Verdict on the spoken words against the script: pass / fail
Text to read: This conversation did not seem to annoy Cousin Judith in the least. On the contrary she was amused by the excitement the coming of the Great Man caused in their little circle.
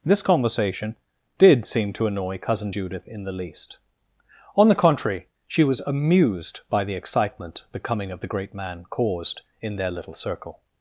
fail